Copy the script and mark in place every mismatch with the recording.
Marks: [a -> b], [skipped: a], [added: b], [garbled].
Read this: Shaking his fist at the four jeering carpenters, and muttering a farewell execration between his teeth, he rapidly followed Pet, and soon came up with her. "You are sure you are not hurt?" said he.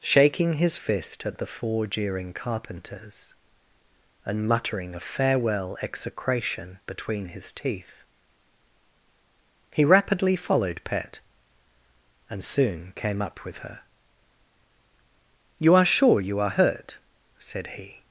Shaking his fist at the four jeering carpenters, and muttering a farewell execration between his teeth, he rapidly followed Pet, and soon came up with her. "You are sure you are [skipped: not] hurt?" said he.